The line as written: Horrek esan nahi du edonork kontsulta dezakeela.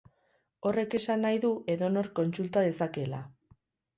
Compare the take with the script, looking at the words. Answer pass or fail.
pass